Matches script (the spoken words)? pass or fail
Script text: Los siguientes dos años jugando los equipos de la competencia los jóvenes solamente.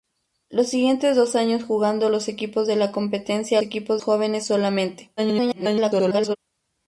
fail